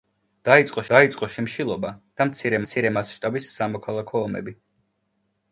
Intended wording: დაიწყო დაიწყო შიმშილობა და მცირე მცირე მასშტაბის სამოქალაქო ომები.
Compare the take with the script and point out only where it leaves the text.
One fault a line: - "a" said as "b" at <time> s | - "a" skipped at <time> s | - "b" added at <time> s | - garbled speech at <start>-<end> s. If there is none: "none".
none